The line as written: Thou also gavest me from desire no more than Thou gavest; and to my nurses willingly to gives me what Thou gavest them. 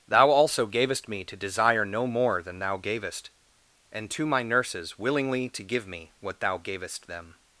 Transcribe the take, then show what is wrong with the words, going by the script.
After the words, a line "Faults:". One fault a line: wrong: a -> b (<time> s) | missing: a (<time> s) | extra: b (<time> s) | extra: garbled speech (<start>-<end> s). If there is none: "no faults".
Thou also gavest me to desire no more than Thou gavest; and to my nurses willingly to give me what Thou gavest them.
Faults:
wrong: from -> to (1.2 s)
wrong: gives -> give (5.6 s)